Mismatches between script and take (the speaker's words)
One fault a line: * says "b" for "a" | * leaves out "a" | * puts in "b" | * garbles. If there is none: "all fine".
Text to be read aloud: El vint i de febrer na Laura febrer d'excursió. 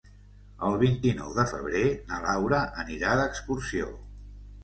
* puts in "nou"
* says "anirà" for "febrer"